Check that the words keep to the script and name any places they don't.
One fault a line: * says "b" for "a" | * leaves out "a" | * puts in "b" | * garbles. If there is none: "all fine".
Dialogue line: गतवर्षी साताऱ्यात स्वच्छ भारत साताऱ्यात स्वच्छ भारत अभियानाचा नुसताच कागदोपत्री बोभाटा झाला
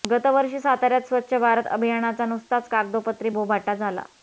* leaves out "साताऱ्यात स्वच्छ भारत"